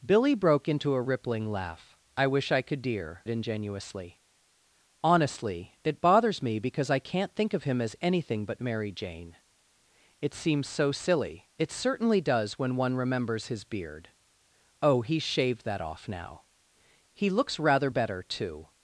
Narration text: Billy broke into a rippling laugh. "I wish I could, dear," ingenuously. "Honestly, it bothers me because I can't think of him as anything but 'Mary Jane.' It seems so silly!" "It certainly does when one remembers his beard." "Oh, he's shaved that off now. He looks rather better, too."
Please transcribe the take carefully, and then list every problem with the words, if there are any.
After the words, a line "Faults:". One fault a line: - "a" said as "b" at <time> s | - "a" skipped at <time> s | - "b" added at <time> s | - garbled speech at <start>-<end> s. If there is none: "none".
Billy broke into a rippling laugh. "I wish I could, dear," ingenuously. "Honestly, it bothers me because I can't think of him as anything but 'Mary Jane.' It seems so silly!" "It certainly does when one remembers his beard." "Oh, he's shaved that off now. He looks rather better, too."
Faults:
none